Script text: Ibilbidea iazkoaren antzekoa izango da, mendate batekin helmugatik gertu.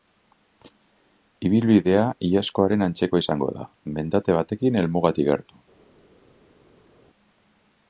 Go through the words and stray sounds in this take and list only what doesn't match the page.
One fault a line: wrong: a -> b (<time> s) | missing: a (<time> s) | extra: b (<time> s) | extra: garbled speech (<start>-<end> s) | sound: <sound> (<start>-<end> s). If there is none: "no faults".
no faults